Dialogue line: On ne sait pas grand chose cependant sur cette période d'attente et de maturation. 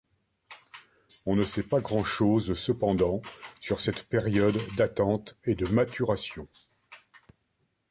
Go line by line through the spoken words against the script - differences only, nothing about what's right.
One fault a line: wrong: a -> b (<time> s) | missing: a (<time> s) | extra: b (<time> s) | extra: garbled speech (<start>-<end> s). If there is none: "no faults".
no faults